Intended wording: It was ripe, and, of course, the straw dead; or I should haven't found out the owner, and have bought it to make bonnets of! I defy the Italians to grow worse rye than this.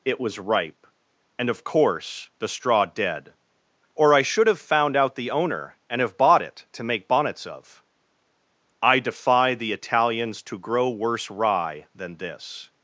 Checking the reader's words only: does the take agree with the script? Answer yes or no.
no